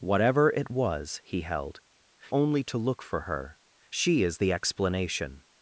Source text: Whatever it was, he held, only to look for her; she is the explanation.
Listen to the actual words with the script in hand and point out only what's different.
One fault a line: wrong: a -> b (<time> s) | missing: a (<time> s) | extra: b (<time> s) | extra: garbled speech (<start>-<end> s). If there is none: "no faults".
no faults